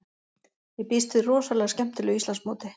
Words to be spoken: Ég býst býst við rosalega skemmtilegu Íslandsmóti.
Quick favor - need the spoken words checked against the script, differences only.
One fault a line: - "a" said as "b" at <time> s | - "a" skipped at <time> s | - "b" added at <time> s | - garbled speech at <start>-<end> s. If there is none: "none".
- "býst" skipped at 1.1 s